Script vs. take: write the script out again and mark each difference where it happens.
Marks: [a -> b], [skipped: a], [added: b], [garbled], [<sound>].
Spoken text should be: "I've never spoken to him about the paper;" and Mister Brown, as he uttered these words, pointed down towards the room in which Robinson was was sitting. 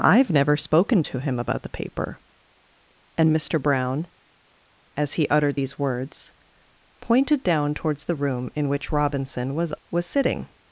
"I've never spoken to him about the paper;" and Mister Brown, as he uttered these words, pointed down towards the room in which Robinson was was sitting.